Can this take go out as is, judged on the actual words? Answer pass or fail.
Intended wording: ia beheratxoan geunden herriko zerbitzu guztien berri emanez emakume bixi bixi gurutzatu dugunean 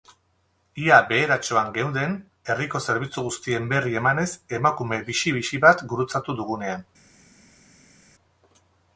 fail